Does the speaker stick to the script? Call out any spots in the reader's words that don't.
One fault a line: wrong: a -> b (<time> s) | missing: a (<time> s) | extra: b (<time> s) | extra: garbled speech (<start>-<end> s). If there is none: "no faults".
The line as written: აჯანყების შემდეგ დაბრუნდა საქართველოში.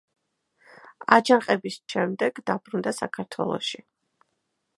no faults